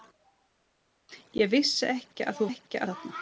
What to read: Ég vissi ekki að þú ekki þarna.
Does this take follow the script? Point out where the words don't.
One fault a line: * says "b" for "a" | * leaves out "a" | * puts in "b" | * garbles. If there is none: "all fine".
all fine